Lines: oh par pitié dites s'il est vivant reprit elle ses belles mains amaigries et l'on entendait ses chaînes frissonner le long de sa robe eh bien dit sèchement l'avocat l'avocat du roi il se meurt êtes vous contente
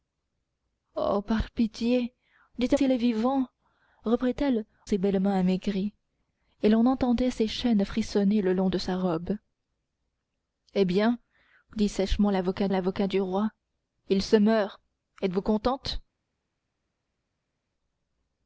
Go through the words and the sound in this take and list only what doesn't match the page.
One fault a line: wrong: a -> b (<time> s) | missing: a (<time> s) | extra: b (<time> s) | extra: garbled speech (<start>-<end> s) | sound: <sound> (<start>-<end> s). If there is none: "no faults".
no faults